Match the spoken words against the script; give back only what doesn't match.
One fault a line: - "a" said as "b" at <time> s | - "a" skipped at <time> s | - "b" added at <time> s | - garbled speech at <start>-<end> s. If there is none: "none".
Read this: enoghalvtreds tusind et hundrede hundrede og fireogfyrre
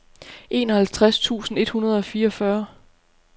- "hundrede" skipped at 2.0 s